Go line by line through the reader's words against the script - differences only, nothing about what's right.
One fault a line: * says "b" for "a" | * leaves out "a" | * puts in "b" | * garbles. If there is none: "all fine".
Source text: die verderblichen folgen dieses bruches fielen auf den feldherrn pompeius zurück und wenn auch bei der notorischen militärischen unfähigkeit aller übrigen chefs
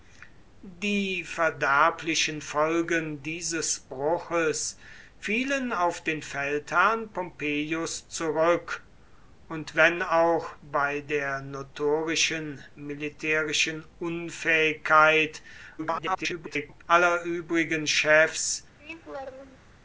* garbles